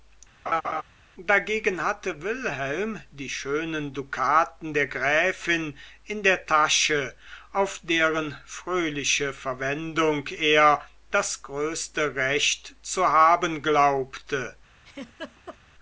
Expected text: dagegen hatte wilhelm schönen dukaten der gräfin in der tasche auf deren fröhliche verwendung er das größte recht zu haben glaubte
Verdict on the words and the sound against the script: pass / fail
fail